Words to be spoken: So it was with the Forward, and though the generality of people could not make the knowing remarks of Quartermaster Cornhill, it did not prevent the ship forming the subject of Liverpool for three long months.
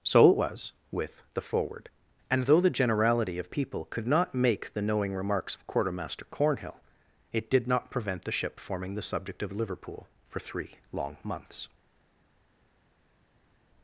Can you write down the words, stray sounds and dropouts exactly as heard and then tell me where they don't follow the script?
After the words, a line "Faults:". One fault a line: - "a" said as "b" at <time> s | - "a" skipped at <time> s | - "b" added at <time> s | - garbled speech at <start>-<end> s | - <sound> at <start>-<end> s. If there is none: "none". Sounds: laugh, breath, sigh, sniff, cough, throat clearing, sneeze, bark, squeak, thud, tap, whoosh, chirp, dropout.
So it was with the Forward, and though the generality of people could not make the knowing remarks of Quartermaster Cornhill, it did not prevent the ship forming the subject of Liverpool for three long months.
Faults:
none